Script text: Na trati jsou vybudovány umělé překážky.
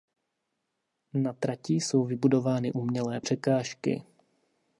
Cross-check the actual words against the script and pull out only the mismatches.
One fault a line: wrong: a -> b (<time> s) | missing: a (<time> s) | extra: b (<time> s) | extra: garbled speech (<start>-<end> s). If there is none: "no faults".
no faults